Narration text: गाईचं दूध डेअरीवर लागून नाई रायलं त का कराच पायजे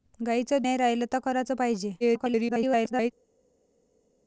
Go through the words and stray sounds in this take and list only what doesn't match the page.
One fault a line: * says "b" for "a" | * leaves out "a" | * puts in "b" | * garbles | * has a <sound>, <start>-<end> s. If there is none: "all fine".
* leaves out "दूध डेअरीवर लागून"
* leaves out "का"
* garbles